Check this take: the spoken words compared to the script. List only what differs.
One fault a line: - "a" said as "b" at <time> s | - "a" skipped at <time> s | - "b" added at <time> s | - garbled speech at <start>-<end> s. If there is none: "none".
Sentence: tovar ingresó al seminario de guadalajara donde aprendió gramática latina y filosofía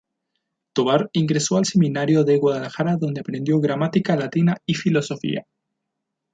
none